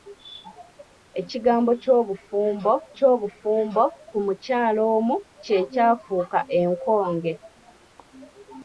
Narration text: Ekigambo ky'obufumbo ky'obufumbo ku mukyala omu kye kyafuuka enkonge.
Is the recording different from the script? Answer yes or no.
no